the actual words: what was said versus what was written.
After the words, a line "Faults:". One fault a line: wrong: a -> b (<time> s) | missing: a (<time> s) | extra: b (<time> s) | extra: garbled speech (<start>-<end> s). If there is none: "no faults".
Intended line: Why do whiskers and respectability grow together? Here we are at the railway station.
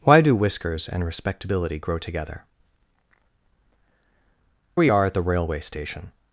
Why do whiskers and respectability grow together? We are at the railway station.
Faults:
missing: Here (2.4 s)